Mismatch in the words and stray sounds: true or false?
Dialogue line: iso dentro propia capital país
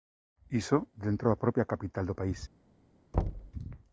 true